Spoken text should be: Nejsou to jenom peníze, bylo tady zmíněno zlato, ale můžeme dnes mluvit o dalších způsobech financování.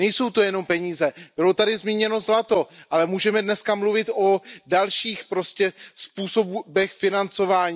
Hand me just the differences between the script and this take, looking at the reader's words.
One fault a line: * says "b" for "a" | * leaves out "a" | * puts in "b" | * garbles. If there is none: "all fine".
all fine